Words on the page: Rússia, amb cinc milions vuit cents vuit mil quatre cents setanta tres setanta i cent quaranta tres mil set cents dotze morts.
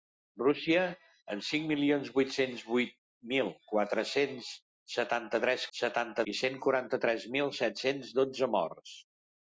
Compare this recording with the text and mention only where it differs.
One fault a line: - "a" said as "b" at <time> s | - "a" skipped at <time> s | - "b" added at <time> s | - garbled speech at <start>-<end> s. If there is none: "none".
none